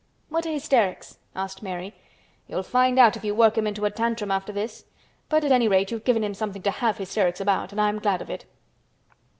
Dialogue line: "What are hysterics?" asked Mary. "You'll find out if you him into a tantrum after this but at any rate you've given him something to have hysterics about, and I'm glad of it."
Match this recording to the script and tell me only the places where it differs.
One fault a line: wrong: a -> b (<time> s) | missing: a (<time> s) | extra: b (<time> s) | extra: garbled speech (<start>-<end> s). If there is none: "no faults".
extra: work (3.4 s)